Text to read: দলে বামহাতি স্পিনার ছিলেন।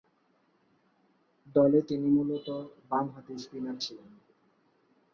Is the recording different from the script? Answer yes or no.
yes